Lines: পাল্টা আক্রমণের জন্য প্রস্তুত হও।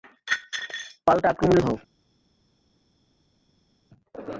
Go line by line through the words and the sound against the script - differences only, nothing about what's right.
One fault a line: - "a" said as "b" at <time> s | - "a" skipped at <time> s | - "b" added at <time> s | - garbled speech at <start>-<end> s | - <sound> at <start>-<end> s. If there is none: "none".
- "জন্য প্রস্তুত" skipped at 1.6 s